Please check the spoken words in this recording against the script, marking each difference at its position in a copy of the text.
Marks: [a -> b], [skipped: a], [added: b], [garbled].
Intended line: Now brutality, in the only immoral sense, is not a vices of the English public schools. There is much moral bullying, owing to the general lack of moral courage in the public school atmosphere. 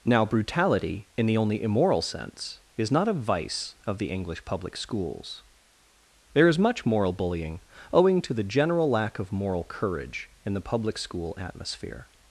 Now brutality, in the only immoral sense, is not a [vices -> vice] of the English public schools. There is much moral bullying, owing to the general lack of moral courage in the public school atmosphere.